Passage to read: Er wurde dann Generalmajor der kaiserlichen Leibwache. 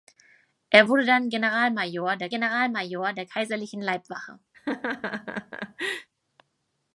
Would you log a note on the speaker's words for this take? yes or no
yes